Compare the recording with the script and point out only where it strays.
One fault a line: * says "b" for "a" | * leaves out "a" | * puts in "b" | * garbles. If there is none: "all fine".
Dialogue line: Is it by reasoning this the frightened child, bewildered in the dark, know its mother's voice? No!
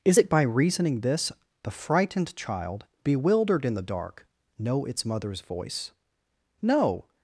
all fine